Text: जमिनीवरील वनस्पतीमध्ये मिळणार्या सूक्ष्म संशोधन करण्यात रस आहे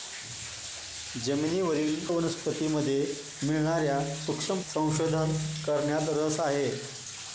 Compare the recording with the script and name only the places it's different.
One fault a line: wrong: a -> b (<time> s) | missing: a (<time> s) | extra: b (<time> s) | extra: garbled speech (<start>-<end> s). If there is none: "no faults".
no faults